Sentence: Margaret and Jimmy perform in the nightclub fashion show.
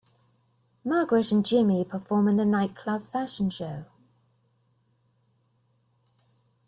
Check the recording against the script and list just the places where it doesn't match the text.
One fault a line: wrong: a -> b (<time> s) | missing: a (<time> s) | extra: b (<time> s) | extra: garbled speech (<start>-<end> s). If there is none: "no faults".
no faults